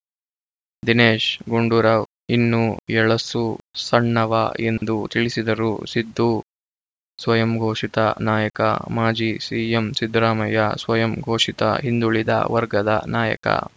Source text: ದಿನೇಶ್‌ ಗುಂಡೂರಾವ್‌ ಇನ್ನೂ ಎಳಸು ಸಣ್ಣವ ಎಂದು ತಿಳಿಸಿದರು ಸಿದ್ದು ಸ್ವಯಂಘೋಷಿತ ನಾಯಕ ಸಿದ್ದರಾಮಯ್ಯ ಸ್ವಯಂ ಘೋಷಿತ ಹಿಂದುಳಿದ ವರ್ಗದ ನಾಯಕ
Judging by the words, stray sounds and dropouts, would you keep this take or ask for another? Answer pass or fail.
fail